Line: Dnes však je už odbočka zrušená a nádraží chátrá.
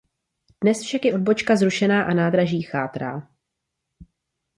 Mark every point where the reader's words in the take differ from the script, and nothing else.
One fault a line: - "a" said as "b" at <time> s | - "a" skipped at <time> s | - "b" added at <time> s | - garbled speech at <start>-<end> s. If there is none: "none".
- "už" skipped at 1.1 s